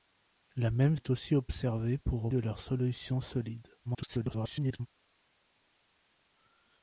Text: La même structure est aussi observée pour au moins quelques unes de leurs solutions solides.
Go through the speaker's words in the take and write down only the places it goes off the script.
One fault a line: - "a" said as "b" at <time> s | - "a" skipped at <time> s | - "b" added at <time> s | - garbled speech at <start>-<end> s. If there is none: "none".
- "structure" skipped at 1.0 s
- "moins quelques unes" skipped at 2.3 s
- garbled speech at 3.8-4.9 s